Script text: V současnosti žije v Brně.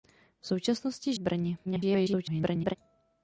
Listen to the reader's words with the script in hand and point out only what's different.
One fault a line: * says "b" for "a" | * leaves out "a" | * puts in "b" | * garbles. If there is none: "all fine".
* leaves out "žije"
* garbles